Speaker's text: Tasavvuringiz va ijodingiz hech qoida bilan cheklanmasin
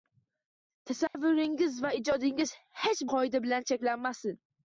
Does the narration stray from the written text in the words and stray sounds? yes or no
yes